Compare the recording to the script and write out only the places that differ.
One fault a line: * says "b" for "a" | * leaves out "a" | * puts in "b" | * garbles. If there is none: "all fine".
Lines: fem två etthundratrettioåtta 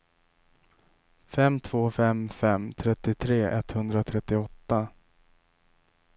* puts in "fem fem trettiotre"